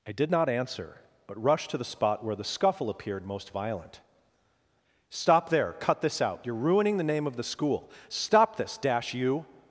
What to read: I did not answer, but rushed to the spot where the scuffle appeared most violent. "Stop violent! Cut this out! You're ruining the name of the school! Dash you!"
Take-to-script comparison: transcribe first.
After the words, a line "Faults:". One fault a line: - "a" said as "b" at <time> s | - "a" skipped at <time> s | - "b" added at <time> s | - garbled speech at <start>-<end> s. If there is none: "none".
I did not answer, but rushed to the spot where the scuffle appeared most violent. "Stop there! Cut this out! You're ruining the name of the school! Stop this, dash you!"
Faults:
- "violent" said as "there" at 5.5 s
- "Stop this" added at 8.1 s